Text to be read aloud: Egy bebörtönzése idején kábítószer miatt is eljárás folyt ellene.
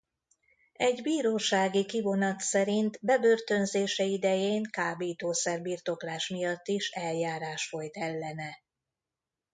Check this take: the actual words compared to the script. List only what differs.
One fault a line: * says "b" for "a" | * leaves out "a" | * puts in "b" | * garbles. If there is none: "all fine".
* puts in "bírósági kivonat szerint"
* puts in "birtoklás"